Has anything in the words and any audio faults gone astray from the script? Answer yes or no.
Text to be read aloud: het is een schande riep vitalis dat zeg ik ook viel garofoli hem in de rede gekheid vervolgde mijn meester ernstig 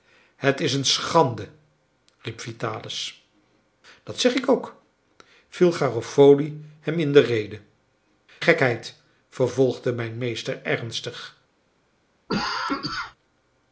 yes